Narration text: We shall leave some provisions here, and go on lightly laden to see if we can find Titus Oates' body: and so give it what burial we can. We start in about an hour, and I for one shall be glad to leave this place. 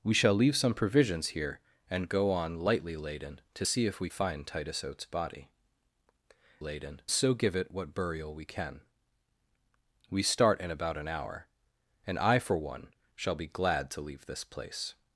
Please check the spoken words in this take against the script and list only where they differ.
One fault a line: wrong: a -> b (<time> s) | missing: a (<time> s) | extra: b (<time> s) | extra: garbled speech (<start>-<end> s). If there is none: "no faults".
missing: can (4.1 s)
wrong: and -> laden (6.6 s)